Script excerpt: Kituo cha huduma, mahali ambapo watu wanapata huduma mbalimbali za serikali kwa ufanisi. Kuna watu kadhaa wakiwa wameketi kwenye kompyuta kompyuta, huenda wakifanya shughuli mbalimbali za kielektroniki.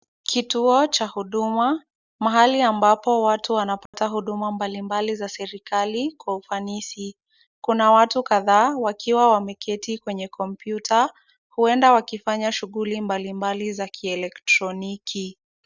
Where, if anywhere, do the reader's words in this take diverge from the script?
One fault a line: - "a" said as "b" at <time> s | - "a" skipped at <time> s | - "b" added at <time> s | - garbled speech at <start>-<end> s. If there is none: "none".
- "kompyuta" skipped at 11.1 s